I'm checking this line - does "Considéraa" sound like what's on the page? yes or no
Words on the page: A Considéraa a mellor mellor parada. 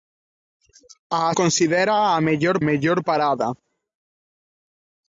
yes